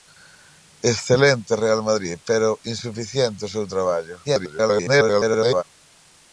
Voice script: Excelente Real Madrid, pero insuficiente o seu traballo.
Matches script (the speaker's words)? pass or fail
fail